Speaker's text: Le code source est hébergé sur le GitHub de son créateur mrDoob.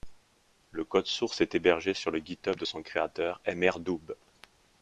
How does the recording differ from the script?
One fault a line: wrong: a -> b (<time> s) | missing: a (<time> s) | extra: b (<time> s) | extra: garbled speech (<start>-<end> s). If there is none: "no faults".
no faults